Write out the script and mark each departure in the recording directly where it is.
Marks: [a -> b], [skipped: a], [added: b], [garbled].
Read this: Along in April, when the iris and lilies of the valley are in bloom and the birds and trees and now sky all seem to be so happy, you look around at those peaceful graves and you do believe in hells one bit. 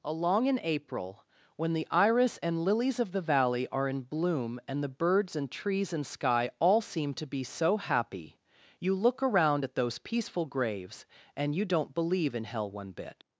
Along in April, when the iris and lilies of the valley are in bloom and the birds and trees and [skipped: now] sky all seem to be so happy, you look around at those peaceful graves and you [do -> don't] believe in [hells -> hell] one bit.